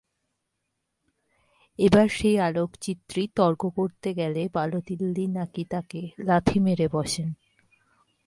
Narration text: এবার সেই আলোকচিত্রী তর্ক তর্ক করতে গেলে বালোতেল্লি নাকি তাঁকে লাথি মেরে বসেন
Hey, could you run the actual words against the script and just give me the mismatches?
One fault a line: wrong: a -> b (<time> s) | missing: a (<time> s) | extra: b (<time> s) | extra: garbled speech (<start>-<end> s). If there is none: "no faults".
missing: তর্ক (3.6 s)